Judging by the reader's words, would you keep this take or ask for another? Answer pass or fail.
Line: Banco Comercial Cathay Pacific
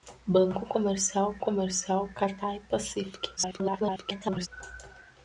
fail